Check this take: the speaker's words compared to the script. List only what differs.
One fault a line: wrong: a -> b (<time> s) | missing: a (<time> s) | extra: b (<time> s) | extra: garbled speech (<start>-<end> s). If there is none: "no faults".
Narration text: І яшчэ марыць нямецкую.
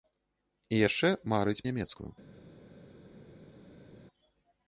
no faults